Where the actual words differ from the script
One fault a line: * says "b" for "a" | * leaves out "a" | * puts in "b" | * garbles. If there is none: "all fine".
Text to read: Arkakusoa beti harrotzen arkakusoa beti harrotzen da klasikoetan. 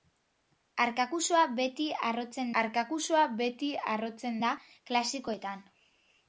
all fine